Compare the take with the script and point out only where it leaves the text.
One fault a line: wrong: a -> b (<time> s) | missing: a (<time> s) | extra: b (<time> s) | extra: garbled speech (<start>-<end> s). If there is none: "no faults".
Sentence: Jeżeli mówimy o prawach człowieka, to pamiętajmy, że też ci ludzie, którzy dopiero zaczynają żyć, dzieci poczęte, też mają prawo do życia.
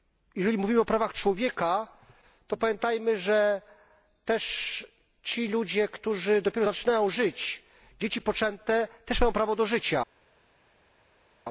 no faults